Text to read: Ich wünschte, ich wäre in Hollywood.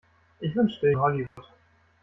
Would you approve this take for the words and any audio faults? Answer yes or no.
no